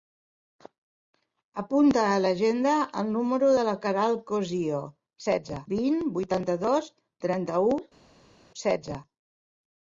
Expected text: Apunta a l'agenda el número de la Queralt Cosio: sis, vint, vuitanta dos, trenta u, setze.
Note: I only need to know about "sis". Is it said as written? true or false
false